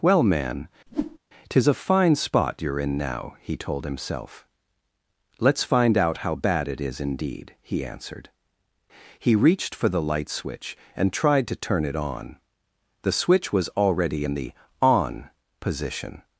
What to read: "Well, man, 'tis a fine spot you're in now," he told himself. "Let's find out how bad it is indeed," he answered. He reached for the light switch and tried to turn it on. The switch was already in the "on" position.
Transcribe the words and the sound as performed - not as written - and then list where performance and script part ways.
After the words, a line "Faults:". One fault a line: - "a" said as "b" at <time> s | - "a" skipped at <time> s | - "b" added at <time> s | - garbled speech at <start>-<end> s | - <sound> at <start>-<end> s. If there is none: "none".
"Well, man, 'tis a fine spot you're in now," he told himself. "Let's find out how bad it is indeed," he answered. He reached for the light switch and tried to turn it on. The switch was already in the "on" position.
Faults:
- whoosh at 0.9-1.2 s